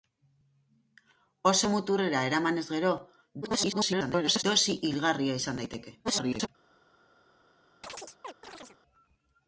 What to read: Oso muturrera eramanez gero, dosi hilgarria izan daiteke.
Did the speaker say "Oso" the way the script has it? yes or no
yes